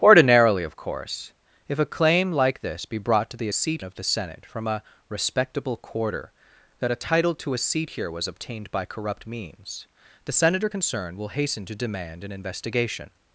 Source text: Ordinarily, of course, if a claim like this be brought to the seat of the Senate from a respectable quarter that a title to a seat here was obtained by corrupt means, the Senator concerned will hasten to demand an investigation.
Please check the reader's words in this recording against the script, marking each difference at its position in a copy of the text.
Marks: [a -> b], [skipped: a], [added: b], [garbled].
Ordinarily, of course, if a claim like this be brought to the seat of the Senate from a respectable quarter that a title to a seat here was obtained by corrupt means, the Senator concerned will hasten to demand an investigation.